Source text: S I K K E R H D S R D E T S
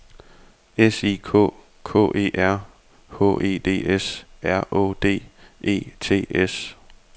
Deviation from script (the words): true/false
true